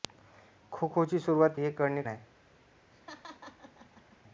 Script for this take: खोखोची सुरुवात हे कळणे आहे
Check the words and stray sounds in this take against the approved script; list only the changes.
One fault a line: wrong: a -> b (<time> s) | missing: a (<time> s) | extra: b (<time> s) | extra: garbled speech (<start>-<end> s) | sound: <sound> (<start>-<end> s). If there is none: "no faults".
sound: laugh (2.9-4.2 s)